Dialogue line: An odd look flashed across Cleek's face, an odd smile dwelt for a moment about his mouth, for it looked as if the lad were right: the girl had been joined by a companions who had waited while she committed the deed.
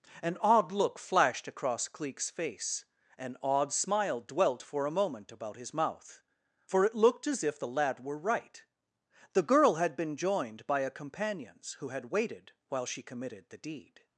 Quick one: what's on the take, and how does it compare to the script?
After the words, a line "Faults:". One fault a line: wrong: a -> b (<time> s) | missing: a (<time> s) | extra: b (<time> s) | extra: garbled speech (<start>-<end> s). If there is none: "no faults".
An odd look flashed across Cleek's face, an odd smile dwelt for a moment about his mouth, for it looked as if the lad were right: the girl had been joined by a companions who had waited while she committed the deed.
Faults:
no faults